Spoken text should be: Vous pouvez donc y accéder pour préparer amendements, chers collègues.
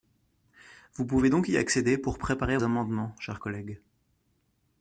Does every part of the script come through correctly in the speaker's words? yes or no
yes